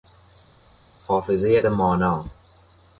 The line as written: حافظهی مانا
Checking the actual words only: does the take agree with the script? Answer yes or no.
yes